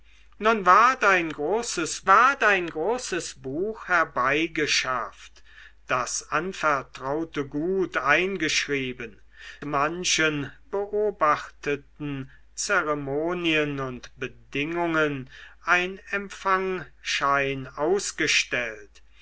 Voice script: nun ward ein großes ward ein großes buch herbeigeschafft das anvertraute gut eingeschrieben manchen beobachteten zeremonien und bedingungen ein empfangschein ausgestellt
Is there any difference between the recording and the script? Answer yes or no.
no